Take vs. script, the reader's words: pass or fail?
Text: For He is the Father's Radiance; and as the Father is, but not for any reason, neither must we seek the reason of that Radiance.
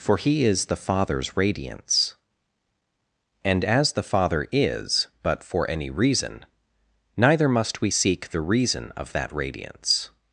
fail